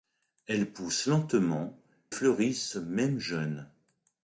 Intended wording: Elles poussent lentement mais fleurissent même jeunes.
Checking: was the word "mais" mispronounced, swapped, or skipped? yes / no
yes